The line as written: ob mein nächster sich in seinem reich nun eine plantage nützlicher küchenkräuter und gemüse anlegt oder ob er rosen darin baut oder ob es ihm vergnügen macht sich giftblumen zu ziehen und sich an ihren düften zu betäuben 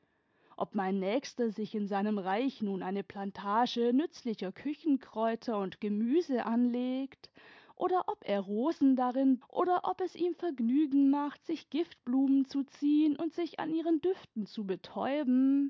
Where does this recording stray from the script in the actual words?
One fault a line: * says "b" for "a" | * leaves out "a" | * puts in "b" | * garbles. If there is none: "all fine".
* leaves out "baut"